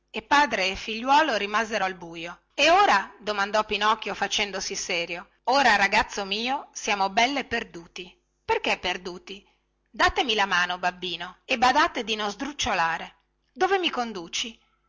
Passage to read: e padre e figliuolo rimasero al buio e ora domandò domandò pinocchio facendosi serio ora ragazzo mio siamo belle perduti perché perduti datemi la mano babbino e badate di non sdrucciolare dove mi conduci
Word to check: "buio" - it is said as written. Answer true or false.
true